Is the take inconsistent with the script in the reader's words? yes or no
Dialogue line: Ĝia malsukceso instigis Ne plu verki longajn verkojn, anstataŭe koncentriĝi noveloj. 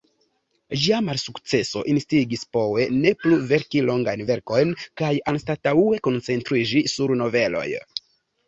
yes